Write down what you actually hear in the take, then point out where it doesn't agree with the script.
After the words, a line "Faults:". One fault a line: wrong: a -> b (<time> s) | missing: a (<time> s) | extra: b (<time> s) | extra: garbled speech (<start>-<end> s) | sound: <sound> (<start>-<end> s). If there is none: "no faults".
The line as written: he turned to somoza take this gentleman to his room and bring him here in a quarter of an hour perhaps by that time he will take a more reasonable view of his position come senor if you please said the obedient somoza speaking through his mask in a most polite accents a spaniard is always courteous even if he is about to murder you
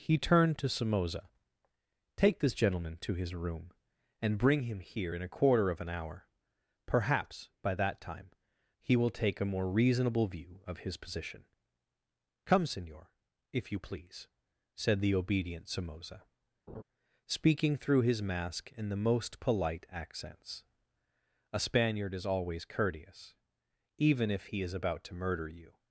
he turned to somoza take this gentleman to his room and bring him here in a quarter of an hour perhaps by that time he will take a more reasonable view of his position come senor if you please said the obedient somoza speaking through his mask in the most polite accents a spaniard is always courteous even if he is about to murder you
Faults:
sound: laugh (16.7-16.8 s)
wrong: a -> the (18.9 s)